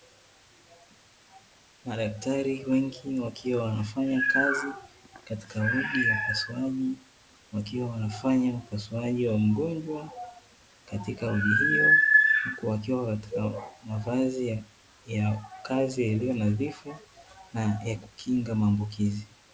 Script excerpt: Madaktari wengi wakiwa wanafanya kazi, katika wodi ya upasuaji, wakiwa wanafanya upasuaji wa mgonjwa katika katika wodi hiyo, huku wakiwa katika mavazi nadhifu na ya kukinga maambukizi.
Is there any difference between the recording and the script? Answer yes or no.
yes